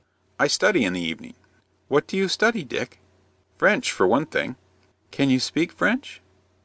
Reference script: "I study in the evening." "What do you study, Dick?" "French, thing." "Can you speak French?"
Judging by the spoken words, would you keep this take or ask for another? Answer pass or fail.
fail